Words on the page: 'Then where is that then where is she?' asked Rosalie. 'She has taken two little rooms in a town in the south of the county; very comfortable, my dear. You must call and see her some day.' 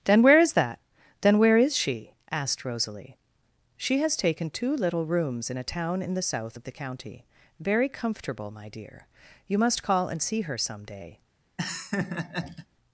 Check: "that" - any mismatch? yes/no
no